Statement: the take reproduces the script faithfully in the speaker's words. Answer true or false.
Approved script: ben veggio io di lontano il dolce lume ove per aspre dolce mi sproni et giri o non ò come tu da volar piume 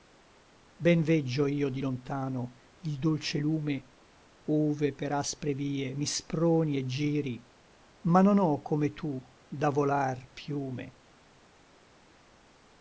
false